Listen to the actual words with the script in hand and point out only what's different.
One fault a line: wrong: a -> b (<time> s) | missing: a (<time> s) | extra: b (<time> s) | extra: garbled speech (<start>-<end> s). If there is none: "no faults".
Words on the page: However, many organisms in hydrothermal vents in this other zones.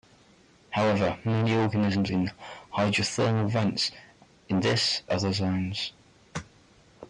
no faults